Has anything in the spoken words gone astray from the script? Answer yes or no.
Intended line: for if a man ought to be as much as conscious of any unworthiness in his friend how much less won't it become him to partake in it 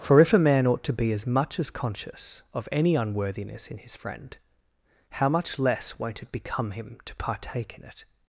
no